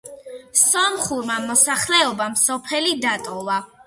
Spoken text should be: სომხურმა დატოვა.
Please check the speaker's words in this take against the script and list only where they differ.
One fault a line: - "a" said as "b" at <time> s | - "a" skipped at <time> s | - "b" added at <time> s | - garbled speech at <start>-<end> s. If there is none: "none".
- "მოსახლეობამ სოფელი" added at 1.5 s